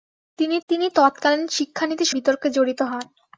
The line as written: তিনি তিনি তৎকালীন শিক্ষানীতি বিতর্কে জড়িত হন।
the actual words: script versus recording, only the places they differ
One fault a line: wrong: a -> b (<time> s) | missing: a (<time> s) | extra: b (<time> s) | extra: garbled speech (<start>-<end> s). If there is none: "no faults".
no faults